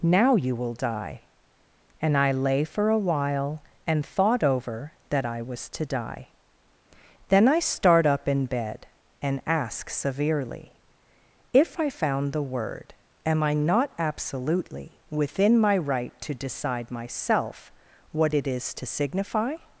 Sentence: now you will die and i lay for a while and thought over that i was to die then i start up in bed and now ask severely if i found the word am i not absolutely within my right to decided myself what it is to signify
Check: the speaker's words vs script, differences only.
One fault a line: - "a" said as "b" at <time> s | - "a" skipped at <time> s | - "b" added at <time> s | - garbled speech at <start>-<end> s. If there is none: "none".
- "now" skipped at 9.4 s
- "decided" said as "decide" at 16.3 s